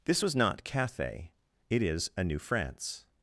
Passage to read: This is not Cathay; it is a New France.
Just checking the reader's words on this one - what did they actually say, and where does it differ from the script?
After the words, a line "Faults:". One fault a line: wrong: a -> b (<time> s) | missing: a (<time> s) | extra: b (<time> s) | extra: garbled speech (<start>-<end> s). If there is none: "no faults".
This was not Cathay; it is a New France.
Faults:
wrong: is -> was (0.2 s)